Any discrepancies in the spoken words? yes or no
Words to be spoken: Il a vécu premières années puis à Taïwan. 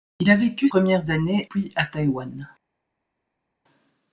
no